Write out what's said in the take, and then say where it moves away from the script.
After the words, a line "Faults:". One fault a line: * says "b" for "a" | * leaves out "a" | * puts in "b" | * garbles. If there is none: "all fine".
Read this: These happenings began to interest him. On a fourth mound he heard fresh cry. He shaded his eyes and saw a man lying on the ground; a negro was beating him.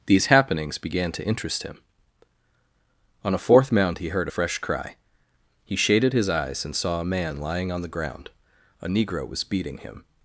These happenings began to interest him. On a fourth mound he heard fresh cry. He shaded his eyes and saw a man lying on the ground; a negro was beating him.
Faults:
all fine